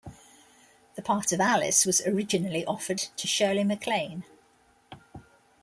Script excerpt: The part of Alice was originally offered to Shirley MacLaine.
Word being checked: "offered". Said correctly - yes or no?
yes